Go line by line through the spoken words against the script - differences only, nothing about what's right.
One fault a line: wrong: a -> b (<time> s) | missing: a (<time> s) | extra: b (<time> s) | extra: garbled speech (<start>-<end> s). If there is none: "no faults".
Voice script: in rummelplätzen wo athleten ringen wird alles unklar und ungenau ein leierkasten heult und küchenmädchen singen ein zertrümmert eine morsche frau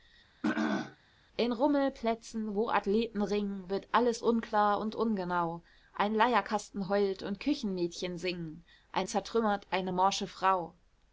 no faults